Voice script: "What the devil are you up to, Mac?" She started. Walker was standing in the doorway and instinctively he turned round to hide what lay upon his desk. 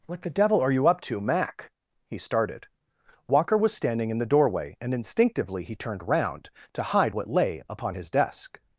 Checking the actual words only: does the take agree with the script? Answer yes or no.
no